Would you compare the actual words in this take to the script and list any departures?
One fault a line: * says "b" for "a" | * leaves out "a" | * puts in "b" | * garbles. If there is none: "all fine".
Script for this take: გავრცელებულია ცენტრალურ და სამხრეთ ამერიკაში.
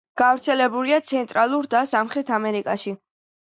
all fine